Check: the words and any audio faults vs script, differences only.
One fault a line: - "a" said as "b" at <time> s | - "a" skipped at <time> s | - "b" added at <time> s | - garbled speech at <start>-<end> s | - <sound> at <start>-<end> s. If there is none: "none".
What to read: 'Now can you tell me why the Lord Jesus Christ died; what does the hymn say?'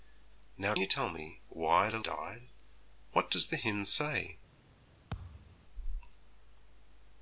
- "can" skipped at 0.7 s
- "Lord Jesus Christ" skipped at 2.0 s
- thud at 5.1-5.7 s